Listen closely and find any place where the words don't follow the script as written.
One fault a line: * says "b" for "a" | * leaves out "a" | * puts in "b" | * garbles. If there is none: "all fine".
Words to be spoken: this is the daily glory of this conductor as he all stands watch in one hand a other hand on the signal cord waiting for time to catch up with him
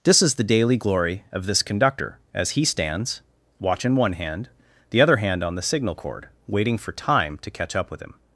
* leaves out "all"
* says "the" for "a"